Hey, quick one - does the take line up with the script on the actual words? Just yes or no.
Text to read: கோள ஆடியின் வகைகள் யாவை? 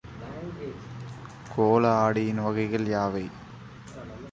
yes